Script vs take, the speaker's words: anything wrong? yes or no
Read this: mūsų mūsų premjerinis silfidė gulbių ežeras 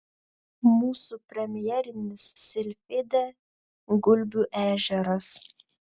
yes